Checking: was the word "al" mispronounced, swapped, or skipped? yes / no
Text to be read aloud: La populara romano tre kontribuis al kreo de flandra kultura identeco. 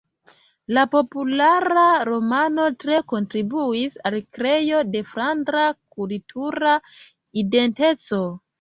no